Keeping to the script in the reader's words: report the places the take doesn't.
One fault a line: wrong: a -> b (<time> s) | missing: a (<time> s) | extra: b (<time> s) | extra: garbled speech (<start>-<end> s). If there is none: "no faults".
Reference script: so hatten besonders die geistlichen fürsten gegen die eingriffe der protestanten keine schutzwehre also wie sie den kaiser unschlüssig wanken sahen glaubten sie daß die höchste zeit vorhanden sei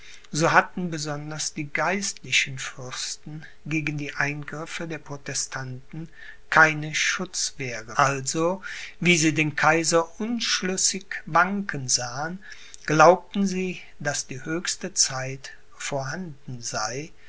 no faults